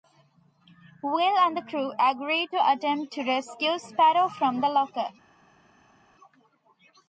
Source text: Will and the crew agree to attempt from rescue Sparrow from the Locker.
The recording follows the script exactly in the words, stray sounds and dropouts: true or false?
false